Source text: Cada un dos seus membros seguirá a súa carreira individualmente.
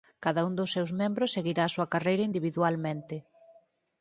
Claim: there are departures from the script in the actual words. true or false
false